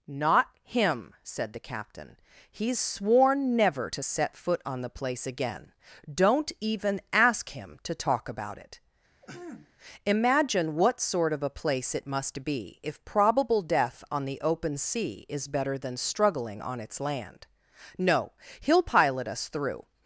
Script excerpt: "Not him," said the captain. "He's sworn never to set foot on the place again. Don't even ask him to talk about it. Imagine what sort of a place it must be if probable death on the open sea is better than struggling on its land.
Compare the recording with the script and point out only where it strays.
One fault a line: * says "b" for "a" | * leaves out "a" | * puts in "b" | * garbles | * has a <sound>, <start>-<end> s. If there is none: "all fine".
* has a throat clearing, 9.2-9.7 s
* puts in "No he'll pilot us through"